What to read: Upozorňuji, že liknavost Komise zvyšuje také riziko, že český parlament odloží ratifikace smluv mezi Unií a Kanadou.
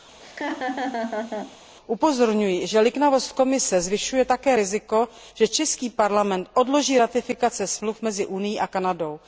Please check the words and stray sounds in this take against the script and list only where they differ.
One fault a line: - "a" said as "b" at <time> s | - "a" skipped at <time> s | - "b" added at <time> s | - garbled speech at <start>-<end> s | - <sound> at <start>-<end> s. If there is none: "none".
- laugh at 0.2-1.6 s